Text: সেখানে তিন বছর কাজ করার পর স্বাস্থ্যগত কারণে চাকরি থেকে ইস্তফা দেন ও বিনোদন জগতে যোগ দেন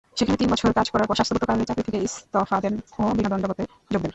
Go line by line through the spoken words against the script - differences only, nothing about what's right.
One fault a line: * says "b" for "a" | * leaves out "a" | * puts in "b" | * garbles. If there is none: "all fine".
all fine